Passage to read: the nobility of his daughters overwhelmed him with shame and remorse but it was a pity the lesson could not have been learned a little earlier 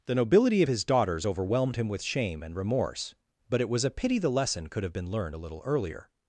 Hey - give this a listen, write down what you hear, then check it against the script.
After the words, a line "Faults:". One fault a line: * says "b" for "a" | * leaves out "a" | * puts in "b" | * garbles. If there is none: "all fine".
the nobility of his daughters overwhelmed him with shame and remorse but it was a pity the lesson could have been learned a little earlier
Faults:
* leaves out "not"